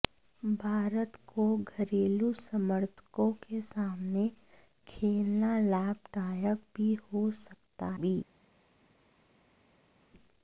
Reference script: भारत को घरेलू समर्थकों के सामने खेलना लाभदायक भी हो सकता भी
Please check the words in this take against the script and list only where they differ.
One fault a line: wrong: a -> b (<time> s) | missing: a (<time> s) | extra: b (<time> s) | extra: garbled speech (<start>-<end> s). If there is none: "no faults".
no faults